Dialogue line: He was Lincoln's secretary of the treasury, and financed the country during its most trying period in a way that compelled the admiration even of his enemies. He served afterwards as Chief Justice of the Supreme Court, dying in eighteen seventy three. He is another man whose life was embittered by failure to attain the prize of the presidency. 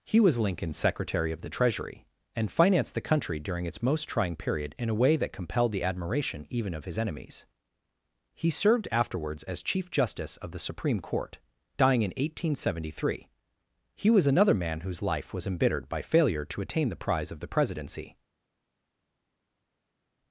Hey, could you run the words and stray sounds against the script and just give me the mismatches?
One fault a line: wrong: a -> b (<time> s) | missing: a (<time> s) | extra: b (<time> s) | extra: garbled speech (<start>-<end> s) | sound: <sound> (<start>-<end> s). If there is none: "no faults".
wrong: is -> was (14.1 s)